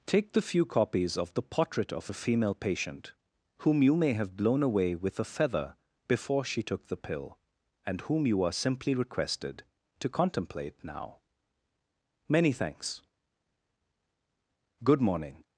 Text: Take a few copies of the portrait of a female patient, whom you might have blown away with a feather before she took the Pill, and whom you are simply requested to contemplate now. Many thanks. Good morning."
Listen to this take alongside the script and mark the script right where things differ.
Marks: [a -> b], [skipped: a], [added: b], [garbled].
Take [a -> the] few copies of the portrait of a female patient, whom you [might -> may] have blown away with a feather before she took the Pill, and whom you are simply requested to contemplate now. Many thanks. Good morning."